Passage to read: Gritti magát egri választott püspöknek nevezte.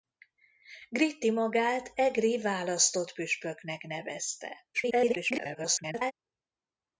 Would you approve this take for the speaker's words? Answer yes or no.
no